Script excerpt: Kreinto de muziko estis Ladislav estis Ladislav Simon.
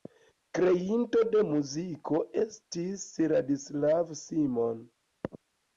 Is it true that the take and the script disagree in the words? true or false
true